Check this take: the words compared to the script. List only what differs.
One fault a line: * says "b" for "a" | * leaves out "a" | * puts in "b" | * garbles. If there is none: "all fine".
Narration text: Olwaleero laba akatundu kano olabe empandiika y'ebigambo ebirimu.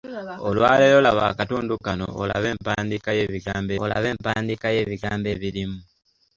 * puts in "olabe empandiika y'ebigambo"